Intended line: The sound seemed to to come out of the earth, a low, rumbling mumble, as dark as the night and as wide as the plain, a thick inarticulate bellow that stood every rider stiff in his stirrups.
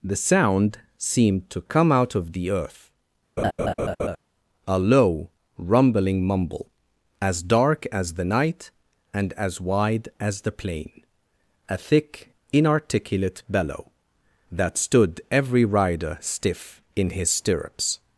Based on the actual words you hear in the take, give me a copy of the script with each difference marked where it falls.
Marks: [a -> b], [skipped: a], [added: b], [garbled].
The sound seemed to [skipped: to] come out of the earth, a low, rumbling mumble, as dark as the night and as wide as the plain, a thick inarticulate bellow that stood every rider stiff in his stirrups.